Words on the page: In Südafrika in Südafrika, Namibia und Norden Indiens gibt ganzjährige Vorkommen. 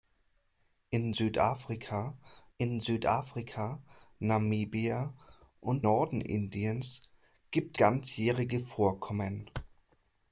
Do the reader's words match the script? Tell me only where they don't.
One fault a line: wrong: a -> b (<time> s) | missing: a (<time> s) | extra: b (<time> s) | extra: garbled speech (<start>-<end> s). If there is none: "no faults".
no faults